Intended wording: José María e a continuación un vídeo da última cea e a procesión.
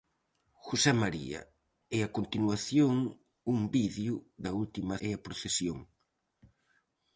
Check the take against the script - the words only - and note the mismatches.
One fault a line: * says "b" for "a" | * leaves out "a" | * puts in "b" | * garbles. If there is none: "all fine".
* leaves out "cea"